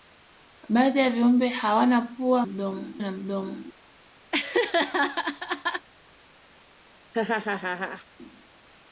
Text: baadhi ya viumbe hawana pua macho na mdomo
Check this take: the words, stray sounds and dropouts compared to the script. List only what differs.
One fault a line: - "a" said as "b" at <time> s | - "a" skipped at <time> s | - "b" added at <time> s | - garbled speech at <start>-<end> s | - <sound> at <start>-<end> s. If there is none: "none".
- "macho" said as "mdomo" at 2.4 s
- laugh at 4.3-5.9 s
- laugh at 7.1-8.1 s